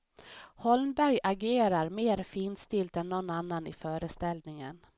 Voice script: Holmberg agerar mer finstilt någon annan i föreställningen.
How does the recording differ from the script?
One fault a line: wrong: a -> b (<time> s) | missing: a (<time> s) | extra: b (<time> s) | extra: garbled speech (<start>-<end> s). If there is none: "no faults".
extra: än (3.0 s)